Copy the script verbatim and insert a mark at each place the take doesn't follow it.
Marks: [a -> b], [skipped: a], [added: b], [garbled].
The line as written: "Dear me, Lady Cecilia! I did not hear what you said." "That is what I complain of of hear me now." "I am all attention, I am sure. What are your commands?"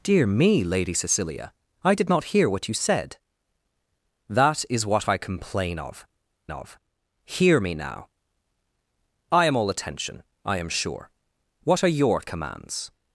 "Dear me, Lady Cecilia! I did not hear what you said." "That is what I complain of of hear me now." "I am all attention, I am sure. What are your commands?"